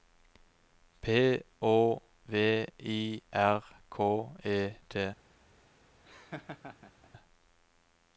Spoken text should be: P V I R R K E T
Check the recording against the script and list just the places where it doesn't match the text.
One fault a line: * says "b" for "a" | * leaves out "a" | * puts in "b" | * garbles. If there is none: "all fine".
* puts in "Å"
* leaves out "R"